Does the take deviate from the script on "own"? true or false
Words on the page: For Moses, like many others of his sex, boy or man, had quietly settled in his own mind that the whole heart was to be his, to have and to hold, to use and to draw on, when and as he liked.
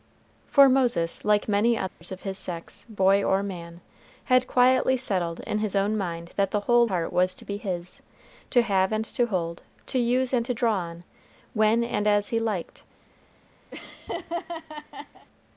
false